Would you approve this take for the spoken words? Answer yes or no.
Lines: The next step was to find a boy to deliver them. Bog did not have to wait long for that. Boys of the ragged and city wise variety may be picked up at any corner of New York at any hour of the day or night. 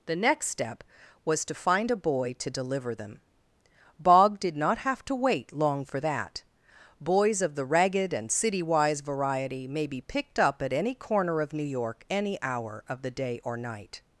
no